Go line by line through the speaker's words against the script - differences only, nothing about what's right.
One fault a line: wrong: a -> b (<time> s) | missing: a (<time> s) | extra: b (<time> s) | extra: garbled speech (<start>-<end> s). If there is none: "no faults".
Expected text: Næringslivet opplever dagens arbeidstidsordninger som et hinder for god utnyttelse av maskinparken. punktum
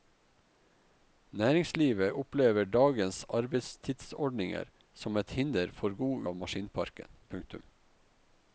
missing: utnyttelse (6.2 s)